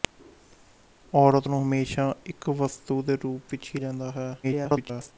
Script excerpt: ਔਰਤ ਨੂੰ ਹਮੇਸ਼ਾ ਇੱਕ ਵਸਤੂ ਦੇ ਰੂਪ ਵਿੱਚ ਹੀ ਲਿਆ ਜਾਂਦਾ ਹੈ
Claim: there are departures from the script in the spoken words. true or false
true